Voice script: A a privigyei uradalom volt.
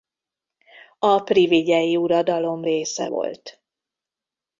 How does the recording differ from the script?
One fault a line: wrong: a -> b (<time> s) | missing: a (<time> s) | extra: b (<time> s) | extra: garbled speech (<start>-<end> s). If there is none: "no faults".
missing: a (1.2 s)
extra: része (2.6 s)